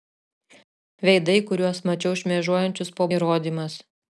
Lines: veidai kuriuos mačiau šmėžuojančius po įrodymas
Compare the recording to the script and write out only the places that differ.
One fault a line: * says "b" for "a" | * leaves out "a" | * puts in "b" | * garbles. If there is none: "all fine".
all fine